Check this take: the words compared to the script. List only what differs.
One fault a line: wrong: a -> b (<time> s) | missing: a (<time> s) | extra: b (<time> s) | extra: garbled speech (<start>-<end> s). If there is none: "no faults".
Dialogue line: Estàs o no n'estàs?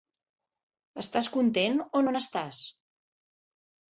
extra: content (1.4 s)